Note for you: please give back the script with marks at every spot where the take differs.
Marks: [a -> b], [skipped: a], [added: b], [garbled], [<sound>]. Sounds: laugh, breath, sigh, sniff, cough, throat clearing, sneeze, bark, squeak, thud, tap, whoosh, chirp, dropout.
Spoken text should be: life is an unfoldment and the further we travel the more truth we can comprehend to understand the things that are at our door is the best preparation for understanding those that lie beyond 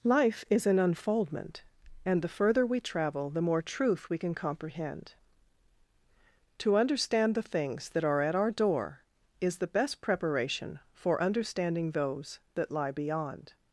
life is an unfoldment and the further we travel the more truth we can comprehend to understand the things that are at our door is the best preparation for understanding those that lie beyond